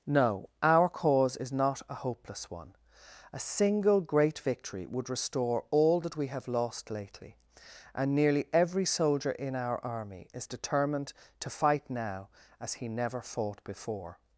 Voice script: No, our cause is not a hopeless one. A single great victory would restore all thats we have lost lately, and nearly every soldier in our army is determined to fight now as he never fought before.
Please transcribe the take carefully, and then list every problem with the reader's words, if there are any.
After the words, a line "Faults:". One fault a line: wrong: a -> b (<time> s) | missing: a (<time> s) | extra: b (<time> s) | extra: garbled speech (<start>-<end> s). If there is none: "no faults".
No, our cause is not a hopeless one. A single great victory would restore all that we have lost lately, and nearly every soldier in our army is determined to fight now as he never fought before.
Faults:
wrong: thats -> that (6.0 s)